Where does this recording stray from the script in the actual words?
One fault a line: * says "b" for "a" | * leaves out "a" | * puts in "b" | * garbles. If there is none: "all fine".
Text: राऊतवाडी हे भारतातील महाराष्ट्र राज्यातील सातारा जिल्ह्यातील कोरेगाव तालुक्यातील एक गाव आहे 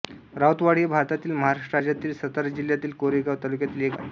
* leaves out "गाव"